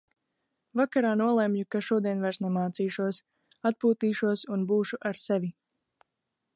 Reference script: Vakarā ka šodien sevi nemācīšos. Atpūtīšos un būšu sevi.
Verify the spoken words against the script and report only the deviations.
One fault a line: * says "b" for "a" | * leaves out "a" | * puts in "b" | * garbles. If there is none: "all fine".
* puts in "nolemju"
* says "vairs" for "sevi"
* puts in "ar"